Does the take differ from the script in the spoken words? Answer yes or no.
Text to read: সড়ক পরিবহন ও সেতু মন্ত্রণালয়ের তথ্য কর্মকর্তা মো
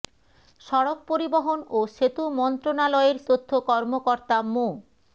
no